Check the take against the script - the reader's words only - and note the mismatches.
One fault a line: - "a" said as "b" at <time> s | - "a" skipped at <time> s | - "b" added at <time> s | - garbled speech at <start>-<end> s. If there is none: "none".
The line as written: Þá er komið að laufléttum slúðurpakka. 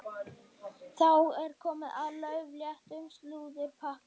none